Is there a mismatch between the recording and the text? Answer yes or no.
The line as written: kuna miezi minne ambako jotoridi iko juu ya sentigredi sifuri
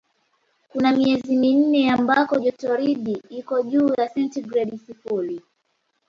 no